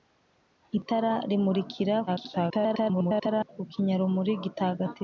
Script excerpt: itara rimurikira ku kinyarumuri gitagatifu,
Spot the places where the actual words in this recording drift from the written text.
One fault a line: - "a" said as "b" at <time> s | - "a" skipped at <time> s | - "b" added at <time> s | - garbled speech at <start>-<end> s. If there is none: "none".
- garbled speech at 2.1-3.5 s